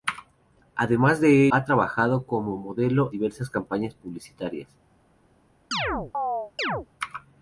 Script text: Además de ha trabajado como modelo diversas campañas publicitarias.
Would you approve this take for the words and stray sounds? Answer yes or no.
no